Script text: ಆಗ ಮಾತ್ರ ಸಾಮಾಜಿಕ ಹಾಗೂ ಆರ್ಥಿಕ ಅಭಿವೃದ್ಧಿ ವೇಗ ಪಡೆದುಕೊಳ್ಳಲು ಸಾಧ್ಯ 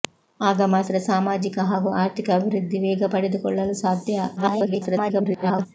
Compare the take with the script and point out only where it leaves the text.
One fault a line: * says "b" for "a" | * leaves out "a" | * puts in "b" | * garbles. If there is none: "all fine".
* garbles